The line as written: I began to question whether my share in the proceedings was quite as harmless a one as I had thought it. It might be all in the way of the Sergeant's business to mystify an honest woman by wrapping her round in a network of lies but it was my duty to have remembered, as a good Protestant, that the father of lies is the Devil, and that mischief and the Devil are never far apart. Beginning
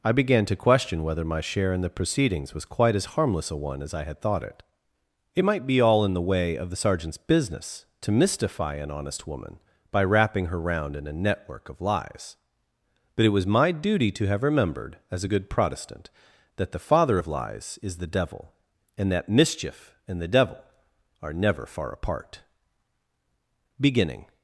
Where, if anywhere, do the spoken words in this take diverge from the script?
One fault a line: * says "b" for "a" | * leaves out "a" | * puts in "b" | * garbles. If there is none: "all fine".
all fine